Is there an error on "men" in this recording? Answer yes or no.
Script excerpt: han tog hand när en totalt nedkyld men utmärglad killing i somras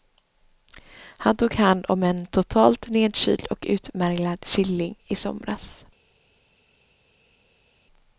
yes